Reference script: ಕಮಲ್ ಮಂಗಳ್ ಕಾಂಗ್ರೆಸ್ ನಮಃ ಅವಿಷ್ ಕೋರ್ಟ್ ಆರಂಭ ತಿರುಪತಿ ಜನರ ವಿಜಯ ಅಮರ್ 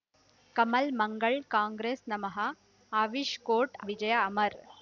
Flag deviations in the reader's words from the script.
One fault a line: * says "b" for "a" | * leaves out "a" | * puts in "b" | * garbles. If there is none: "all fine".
* leaves out "ಆರಂಭ ತಿರುಪತಿ ಜನರ"